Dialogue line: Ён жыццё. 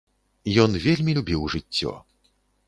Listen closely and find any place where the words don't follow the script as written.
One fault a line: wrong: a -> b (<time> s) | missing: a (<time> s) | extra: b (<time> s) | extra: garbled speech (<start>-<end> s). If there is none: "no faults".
extra: вельмі любіў (0.8 s)